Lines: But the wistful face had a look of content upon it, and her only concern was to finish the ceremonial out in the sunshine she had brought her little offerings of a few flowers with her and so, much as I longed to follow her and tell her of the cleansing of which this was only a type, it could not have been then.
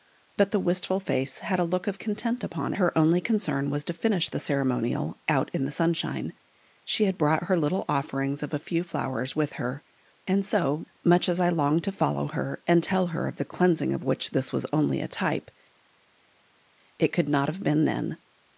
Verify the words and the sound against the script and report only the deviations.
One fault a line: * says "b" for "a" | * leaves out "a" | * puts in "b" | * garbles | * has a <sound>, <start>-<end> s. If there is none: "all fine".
* leaves out "it and"